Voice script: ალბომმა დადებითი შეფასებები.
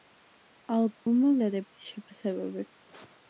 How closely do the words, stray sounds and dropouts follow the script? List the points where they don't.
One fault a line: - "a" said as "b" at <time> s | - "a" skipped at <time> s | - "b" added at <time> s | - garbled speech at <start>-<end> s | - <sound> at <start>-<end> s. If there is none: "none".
- dropout at 0.9-1.1 s